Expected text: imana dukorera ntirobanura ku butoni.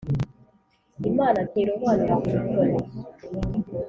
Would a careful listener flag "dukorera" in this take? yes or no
yes